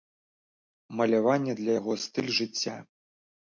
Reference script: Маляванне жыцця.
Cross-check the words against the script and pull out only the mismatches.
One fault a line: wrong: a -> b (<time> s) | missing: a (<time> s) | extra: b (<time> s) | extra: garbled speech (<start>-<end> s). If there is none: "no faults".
extra: для яго стыль (1.6 s)